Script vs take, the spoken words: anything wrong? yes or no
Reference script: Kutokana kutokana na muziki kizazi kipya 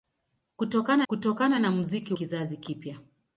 no